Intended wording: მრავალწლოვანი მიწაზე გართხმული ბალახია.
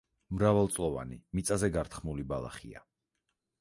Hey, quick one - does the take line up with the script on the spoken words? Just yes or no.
yes